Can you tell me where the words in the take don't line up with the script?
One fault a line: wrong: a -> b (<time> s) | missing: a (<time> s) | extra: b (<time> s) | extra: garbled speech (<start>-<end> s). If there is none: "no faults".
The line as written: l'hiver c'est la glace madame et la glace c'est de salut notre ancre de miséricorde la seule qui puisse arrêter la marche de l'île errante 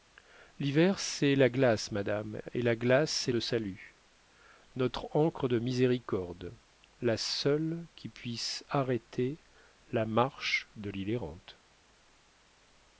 no faults